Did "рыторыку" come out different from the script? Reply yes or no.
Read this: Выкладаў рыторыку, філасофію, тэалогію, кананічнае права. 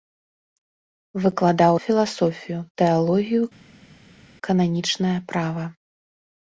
yes